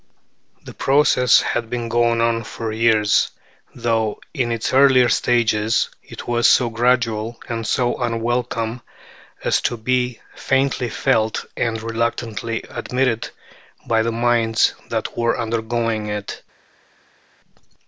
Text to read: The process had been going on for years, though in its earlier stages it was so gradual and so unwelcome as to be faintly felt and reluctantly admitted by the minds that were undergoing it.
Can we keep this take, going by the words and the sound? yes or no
yes